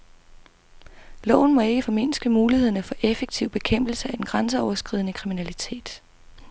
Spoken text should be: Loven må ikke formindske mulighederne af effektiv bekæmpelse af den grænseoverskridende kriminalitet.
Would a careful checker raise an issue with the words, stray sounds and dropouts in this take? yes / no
yes